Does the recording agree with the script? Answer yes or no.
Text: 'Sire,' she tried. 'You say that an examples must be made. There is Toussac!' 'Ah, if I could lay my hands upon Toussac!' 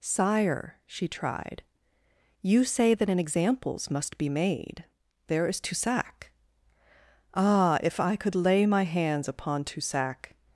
yes